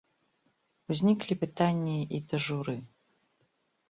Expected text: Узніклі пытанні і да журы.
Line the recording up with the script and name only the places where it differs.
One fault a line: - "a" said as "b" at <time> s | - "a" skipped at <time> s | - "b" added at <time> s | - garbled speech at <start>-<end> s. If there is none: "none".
none